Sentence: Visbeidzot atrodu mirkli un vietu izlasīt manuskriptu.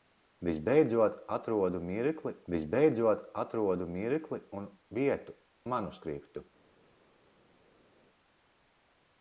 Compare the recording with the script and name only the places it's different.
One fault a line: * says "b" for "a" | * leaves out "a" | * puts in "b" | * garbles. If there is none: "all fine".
* puts in "visbeidzot atrodu mirkli"
* leaves out "izlasīt"